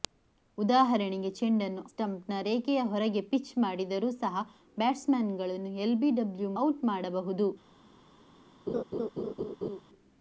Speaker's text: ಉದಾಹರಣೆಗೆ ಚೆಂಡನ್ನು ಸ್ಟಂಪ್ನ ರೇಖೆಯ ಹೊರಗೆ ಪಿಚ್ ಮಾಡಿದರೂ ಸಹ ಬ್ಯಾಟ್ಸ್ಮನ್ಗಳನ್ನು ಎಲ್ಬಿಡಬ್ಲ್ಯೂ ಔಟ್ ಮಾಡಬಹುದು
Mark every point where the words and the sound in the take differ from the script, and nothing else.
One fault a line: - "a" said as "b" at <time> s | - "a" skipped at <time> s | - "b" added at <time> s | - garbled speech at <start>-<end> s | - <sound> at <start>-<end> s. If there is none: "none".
- laugh at 8.7-9.8 s